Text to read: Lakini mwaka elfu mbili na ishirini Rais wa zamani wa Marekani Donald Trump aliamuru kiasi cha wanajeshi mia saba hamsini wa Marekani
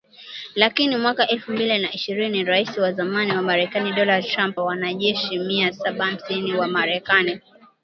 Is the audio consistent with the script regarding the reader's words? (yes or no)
no